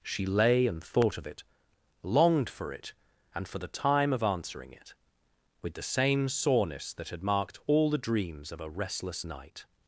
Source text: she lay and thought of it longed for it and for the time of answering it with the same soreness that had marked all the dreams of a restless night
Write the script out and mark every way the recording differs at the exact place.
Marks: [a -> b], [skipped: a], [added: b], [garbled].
she lay and thought of it longed for it and for the time of answering it with the same soreness that had marked all the dreams of a restless night